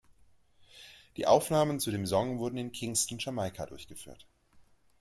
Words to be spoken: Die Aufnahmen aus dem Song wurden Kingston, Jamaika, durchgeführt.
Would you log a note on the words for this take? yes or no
yes